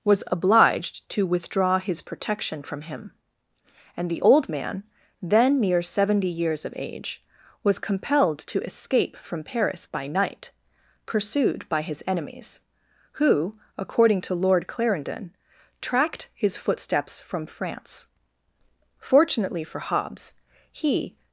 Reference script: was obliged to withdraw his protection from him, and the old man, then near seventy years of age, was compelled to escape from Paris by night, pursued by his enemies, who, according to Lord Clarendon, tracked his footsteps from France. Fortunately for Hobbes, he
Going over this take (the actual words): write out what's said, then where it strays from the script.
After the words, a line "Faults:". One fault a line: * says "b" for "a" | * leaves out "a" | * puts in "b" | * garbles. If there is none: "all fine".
was obliged to withdraw his protection from him, and the old man, then near seventy years of age, was compelled to escape from Paris by night, pursued by his enemies, who, according to Lord Clarendon, tracked his footsteps from France. Fortunately for Hobbes, he
Faults:
all fine